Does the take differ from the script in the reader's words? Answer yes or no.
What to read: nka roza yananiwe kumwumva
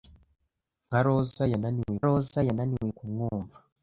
yes